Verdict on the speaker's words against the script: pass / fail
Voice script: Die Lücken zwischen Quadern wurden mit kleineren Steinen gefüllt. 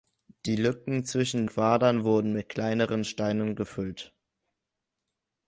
pass